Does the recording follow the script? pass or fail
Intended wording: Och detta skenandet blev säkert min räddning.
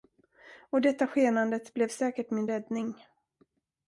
pass